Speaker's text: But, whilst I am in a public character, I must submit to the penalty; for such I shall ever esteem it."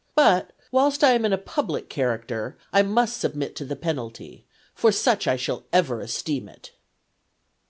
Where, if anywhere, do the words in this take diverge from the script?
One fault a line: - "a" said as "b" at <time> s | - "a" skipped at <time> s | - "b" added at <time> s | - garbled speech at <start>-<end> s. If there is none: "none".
none